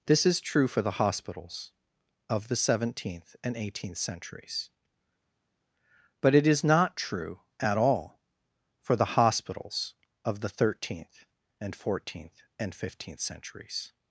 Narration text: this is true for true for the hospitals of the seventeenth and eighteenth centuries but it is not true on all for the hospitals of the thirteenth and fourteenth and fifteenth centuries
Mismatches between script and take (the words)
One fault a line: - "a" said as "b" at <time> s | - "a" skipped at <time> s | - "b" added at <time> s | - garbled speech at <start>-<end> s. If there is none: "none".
- "true for" skipped at 0.8 s
- "on" said as "at" at 7.6 s